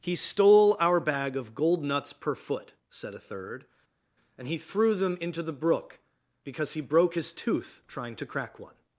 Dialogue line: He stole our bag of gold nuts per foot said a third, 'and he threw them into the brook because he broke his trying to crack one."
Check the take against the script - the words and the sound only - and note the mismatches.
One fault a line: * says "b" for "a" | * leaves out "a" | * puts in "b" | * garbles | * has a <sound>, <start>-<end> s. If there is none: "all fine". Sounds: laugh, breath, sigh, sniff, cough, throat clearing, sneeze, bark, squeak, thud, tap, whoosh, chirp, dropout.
* puts in "tooth"